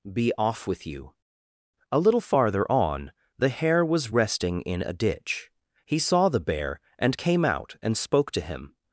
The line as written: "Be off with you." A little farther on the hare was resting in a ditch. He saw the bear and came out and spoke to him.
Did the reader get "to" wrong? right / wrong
right